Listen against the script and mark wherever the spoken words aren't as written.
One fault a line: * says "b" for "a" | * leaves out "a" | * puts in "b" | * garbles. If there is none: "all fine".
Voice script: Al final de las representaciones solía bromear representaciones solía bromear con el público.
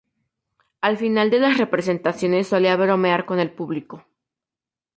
* leaves out "representaciones solía bromear"